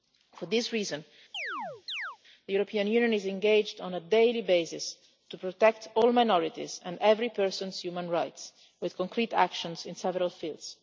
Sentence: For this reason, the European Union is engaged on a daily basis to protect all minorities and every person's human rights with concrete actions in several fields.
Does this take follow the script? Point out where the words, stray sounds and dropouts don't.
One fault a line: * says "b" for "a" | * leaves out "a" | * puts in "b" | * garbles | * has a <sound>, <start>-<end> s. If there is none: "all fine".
* has a chirp, 1.3-2.2 s